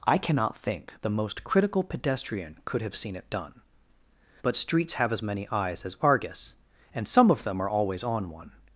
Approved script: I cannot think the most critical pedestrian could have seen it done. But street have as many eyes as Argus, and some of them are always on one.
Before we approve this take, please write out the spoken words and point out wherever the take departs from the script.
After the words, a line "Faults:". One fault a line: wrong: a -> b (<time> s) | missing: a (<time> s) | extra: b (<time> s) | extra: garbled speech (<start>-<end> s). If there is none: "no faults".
I cannot think the most critical pedestrian could have seen it done. But streets have as many eyes as Argus, and some of them are always on one.
Faults:
wrong: street -> streets (4.6 s)